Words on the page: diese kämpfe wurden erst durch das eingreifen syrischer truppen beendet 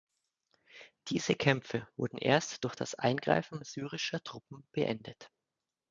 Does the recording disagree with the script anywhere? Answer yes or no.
no